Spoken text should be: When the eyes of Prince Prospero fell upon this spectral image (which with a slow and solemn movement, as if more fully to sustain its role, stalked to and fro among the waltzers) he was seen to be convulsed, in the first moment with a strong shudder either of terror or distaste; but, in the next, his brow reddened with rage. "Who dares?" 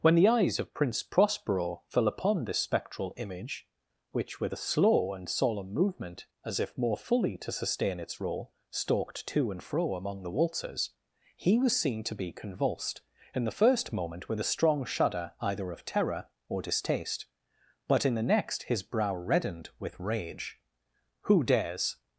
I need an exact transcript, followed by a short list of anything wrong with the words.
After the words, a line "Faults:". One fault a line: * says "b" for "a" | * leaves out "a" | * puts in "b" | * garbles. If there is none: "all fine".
When the eyes of Prince Prospero fell upon this spectral image (which with a slow and solemn movement, as if more fully to sustain its role, stalked to and fro among the waltzers) he was seen to be convulsed, in the first moment with a strong shudder either of terror or distaste; but, in the next, his brow reddened with rage. "Who dares?"
Faults:
all fine